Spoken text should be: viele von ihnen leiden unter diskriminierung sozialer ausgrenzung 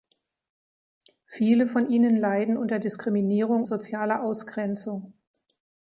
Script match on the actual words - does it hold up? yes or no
yes